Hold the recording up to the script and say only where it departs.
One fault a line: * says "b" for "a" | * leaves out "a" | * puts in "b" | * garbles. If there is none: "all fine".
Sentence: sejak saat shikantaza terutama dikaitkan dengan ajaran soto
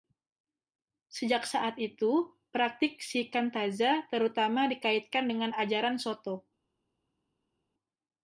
* puts in "itu praktik"